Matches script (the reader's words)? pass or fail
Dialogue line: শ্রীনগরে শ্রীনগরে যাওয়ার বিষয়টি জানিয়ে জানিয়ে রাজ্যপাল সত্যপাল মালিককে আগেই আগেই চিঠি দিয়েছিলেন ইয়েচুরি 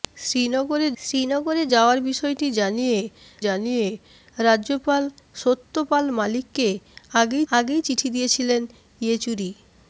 pass